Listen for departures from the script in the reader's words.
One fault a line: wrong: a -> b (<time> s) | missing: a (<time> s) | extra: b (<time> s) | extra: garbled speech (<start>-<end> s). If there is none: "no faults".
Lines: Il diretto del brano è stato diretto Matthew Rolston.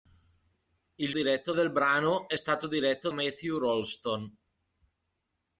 no faults